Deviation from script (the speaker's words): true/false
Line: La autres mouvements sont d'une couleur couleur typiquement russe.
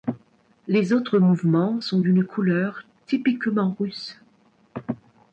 true